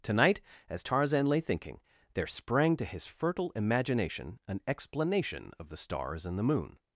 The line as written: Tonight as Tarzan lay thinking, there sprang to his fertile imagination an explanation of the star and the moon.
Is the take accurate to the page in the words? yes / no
no